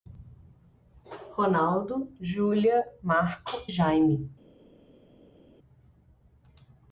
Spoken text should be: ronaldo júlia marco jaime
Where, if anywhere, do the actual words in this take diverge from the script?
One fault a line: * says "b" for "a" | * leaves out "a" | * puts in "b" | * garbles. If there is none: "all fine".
all fine